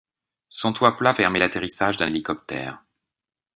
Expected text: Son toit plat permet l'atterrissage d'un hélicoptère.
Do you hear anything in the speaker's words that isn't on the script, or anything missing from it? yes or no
no